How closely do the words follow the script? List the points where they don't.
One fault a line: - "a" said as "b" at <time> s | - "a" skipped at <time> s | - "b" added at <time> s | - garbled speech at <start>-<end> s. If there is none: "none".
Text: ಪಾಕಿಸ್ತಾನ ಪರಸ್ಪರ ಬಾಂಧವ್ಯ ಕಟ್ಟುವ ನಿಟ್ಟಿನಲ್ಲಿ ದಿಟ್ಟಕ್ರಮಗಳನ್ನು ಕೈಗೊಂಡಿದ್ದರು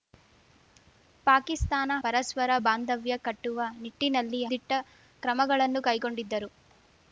none